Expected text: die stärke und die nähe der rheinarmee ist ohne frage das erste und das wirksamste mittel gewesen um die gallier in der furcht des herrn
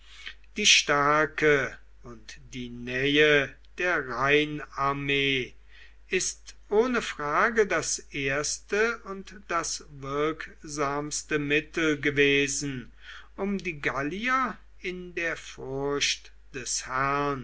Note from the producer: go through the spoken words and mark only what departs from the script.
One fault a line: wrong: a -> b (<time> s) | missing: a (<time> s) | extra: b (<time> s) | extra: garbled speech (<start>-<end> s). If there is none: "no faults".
no faults